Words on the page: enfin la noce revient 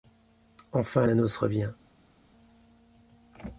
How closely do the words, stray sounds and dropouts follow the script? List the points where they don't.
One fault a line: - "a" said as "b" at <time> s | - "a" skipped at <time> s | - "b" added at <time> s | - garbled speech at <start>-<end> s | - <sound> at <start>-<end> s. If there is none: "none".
none